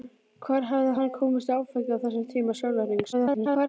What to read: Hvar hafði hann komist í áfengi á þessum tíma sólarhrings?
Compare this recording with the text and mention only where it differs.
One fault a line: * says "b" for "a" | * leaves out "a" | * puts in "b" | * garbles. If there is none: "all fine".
* garbles